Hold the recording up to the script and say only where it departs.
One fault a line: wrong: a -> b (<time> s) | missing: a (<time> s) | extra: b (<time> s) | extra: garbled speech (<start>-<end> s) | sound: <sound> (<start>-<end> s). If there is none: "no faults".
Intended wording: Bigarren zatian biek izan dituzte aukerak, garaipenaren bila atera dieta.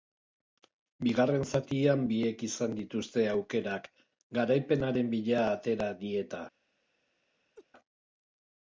sound: laugh (7.6-7.7 s)